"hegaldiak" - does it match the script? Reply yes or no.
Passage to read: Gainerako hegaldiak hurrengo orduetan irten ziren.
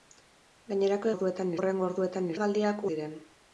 no